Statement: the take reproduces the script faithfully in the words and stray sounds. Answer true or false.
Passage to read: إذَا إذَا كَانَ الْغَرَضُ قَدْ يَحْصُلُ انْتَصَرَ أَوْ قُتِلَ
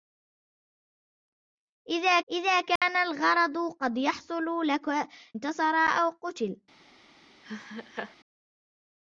false